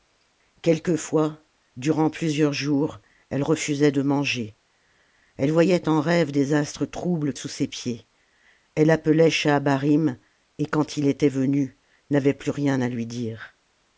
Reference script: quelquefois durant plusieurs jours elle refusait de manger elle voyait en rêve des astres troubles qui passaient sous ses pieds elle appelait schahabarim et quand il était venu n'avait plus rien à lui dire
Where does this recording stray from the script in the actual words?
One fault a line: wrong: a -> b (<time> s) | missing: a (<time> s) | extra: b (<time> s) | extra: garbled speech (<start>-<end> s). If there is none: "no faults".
missing: qui passaient (7.3 s)